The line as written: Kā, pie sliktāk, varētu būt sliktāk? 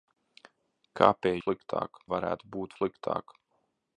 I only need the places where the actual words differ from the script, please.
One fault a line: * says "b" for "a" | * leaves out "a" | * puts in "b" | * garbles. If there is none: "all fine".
all fine